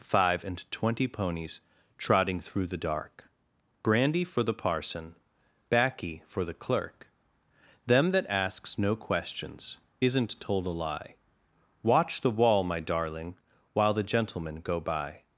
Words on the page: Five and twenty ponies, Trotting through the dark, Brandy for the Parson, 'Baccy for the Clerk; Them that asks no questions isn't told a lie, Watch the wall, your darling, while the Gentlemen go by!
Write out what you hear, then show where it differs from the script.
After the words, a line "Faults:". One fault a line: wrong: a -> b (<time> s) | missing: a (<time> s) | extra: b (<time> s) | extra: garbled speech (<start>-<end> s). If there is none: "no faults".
Five and twenty ponies, Trotting through the dark, Brandy for the Parson, 'Baccy for the Clerk; Them that asks no questions isn't told a lie, Watch the wall, my darling, while the Gentlemen go by!
Faults:
wrong: your -> my (12.6 s)